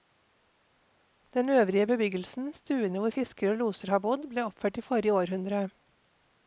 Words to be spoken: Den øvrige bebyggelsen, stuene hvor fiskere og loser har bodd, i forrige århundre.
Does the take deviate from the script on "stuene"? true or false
false